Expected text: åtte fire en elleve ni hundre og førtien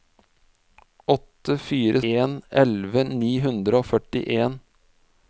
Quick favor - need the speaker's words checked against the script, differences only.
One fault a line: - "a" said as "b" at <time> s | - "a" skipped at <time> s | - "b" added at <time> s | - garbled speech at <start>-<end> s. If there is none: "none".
none